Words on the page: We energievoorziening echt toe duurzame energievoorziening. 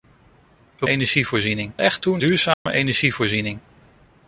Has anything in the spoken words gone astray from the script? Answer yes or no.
no